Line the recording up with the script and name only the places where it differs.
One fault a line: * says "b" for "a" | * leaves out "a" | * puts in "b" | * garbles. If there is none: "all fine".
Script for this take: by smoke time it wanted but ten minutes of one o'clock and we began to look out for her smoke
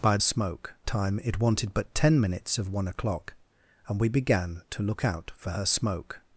all fine